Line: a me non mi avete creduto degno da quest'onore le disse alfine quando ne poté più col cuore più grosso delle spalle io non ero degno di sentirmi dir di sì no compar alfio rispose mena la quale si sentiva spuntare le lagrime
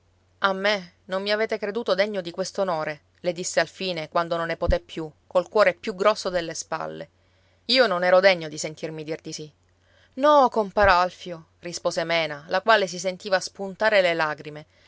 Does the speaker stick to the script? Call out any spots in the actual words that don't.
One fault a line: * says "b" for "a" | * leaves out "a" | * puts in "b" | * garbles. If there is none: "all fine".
* says "di" for "da"
* puts in "non"